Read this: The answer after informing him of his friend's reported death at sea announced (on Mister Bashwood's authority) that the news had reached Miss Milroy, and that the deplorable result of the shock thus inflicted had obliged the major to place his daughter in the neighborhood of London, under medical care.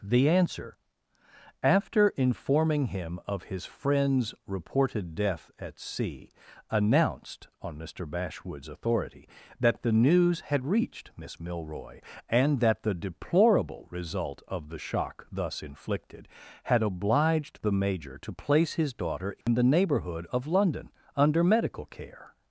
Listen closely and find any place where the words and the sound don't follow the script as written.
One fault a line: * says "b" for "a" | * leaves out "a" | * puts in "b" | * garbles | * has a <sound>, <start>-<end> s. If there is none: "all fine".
* has a dropout, 19.4-19.5 s